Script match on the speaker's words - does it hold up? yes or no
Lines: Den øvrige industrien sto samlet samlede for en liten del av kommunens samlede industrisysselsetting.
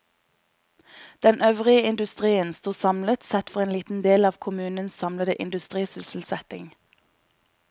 no